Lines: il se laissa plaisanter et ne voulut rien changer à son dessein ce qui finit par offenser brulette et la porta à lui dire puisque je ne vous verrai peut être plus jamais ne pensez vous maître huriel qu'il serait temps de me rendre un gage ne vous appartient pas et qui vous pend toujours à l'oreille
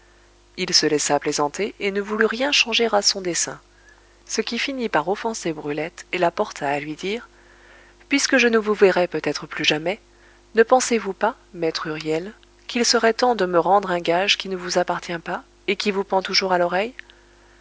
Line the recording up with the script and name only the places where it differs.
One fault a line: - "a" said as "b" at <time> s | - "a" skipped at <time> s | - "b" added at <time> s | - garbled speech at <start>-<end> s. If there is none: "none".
- "pas" added at 11.1 s
- "qui" added at 14.4 s